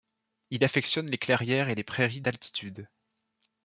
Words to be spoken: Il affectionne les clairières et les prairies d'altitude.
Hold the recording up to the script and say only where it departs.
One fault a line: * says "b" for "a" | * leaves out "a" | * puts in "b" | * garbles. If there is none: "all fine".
all fine